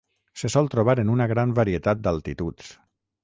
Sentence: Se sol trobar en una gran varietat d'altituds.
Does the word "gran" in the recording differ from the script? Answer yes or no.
no